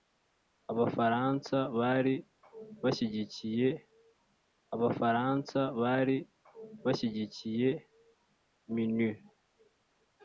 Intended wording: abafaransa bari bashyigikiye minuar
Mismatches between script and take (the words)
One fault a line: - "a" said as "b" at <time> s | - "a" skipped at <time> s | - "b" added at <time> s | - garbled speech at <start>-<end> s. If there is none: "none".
- "abafaransa bari bashyigikiye" added at 4.7 s